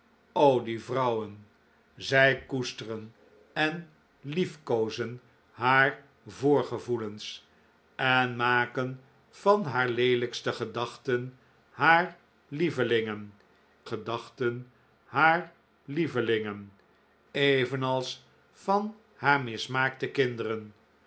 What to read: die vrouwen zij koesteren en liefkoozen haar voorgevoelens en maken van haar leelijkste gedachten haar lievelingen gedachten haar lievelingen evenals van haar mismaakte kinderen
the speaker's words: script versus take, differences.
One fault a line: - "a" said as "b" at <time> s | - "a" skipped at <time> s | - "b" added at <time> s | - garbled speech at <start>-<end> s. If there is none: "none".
none